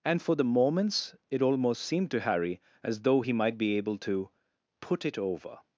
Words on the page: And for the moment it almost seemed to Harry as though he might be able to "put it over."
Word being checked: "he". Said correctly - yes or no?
yes